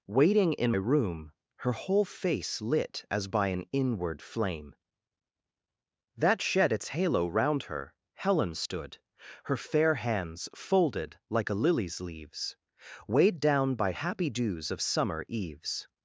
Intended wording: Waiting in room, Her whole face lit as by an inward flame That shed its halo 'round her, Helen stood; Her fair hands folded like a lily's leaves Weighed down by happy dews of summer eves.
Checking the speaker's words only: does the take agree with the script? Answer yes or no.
yes